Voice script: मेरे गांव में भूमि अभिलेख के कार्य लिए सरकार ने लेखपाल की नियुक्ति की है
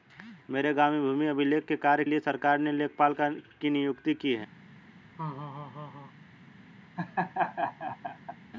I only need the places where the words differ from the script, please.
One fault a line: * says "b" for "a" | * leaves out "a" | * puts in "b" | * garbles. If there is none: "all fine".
all fine